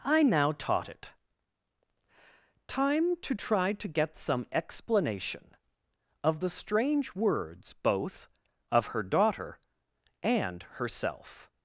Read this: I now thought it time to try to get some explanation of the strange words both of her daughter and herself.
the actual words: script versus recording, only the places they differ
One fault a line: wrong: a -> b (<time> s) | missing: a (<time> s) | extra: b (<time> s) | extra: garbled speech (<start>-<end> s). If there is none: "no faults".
wrong: thought -> taught (0.5 s)